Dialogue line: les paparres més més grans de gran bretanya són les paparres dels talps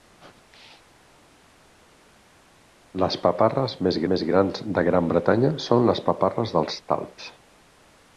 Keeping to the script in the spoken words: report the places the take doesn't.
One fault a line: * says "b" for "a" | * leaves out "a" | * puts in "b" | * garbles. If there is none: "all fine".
all fine